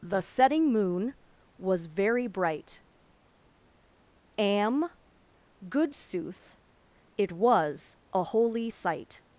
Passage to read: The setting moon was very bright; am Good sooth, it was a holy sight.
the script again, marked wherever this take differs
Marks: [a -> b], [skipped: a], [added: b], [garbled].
The setting moon was very bright; am Good sooth, it was a holy sight.